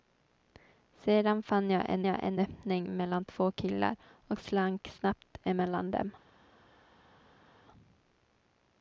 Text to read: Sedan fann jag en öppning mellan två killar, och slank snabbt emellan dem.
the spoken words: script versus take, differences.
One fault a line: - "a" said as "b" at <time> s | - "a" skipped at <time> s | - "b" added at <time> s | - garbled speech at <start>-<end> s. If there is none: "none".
- "jag en" added at 2.1 s